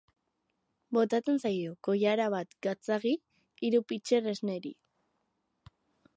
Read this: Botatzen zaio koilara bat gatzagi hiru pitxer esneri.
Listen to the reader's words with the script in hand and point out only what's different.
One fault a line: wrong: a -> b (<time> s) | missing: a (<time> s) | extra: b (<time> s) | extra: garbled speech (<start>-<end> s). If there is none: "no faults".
no faults